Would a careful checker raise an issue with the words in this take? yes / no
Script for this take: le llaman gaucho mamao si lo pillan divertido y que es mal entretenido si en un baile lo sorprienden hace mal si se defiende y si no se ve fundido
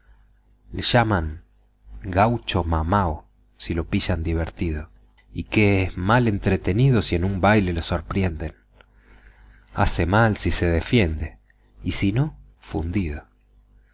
yes